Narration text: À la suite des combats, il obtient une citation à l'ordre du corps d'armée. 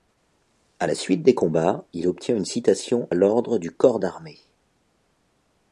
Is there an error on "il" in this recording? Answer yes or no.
no